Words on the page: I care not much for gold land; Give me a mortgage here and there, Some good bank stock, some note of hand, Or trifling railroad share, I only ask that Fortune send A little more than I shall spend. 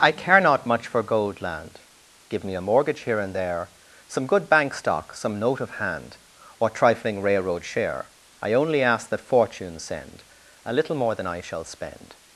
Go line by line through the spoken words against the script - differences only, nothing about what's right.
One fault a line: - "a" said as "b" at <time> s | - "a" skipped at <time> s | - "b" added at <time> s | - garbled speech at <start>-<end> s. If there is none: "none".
none